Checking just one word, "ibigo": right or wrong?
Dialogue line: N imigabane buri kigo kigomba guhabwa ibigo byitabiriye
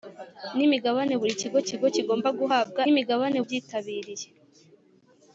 wrong